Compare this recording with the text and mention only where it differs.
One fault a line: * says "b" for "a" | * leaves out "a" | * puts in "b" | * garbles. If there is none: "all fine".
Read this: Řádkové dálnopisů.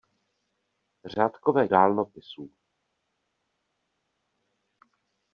all fine